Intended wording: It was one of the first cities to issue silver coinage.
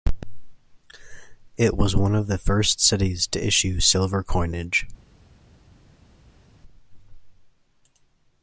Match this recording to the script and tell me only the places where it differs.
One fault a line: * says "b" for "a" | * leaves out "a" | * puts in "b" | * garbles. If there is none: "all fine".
all fine